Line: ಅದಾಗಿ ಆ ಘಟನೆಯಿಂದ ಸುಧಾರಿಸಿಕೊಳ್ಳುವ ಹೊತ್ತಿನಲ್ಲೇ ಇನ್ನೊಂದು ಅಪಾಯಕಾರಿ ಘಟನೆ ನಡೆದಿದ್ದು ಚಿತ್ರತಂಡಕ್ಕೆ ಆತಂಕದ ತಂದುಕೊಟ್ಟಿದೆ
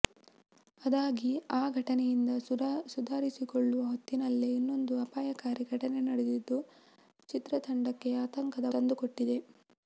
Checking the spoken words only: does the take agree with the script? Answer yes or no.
yes